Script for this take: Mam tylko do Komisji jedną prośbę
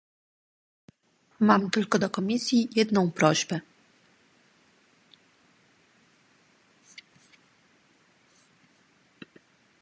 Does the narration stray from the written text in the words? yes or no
no